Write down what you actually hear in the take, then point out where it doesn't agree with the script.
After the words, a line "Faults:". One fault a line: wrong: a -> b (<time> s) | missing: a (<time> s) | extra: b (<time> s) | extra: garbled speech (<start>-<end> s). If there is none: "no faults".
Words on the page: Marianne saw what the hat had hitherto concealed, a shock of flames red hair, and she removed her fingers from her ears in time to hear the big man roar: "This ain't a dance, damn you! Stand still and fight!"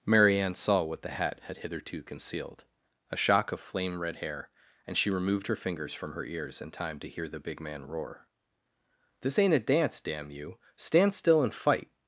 Marianne saw what the hat had hitherto concealed, a shock of flame red hair, and she removed her fingers from her ears in time to hear the big man roar: "This ain't a dance, damn you! Stand still and fight!"
Faults:
wrong: flames -> flame (3.6 s)